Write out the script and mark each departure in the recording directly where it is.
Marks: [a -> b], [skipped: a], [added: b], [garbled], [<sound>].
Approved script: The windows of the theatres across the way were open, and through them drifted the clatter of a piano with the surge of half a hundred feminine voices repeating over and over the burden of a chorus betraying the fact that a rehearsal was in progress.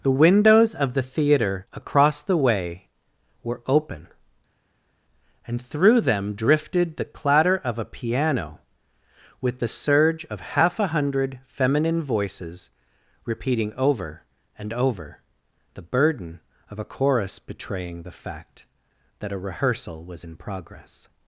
The windows of the [theatres -> theatre] across the way were open, and through them drifted the clatter of a piano with the surge of half a hundred feminine voices repeating over and over the burden of a chorus betraying the fact that a rehearsal was in progress.